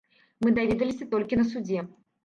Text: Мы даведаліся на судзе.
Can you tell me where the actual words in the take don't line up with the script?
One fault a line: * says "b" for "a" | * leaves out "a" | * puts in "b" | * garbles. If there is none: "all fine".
* puts in "толькі"